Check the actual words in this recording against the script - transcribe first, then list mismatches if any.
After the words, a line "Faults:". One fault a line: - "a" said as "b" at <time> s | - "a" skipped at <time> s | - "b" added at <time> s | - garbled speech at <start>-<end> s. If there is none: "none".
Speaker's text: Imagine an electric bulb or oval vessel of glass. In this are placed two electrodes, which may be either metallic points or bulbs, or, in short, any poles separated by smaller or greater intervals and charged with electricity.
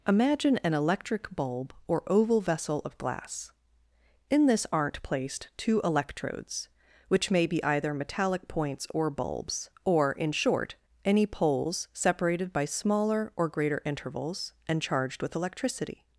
Imagine an electric bulb or oval vessel of glass. In this aren't placed two electrodes, which may be either metallic points or bulbs, or, in short, any poles separated by smaller or greater intervals and charged with electricity.
Faults:
- "are" said as "aren't" at 4.7 s